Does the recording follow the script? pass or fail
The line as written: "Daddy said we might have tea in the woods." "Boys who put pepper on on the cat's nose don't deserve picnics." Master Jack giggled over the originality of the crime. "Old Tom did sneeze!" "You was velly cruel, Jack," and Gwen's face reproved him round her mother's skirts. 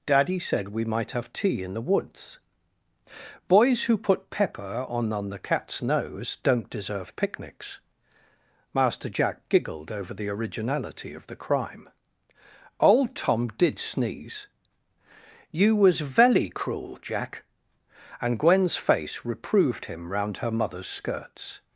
pass